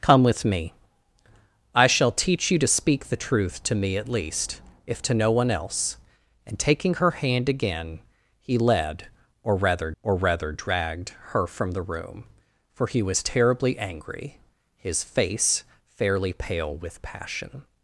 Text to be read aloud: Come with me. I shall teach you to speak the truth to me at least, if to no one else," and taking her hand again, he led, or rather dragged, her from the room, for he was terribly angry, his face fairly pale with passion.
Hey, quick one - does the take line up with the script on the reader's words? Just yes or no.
no